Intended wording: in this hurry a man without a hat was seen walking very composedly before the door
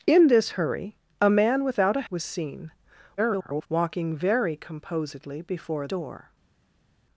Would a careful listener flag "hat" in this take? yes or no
yes